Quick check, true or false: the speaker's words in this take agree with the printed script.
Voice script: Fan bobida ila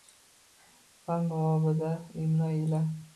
false